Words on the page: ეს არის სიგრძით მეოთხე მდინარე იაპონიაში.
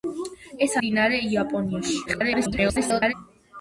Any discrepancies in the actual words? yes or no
yes